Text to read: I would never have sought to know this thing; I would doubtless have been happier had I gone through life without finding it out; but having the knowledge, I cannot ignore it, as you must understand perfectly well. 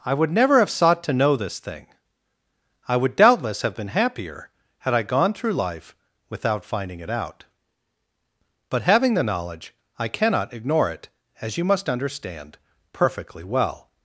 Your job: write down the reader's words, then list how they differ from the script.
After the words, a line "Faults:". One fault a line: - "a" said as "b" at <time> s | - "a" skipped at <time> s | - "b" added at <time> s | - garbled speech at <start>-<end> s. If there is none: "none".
I would never have sought to know this thing; I would doubtless have been happier had I gone through life without finding it out; but having the knowledge, I cannot ignore it, as you must understand perfectly well.
Faults:
none